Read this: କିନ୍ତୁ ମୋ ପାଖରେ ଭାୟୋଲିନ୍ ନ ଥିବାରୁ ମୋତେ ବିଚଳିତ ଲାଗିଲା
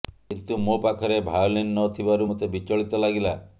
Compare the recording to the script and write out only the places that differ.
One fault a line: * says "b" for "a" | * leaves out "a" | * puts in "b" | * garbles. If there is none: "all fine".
all fine